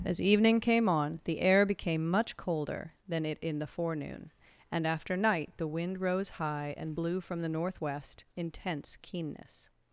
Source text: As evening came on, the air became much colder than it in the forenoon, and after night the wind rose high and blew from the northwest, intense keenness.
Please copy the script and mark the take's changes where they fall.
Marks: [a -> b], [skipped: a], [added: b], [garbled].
As evening came on, the air became much colder than it in the forenoon, and after night the wind rose high and blew from the northwest, intense keenness.